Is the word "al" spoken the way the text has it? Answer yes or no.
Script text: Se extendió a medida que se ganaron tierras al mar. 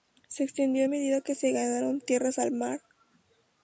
yes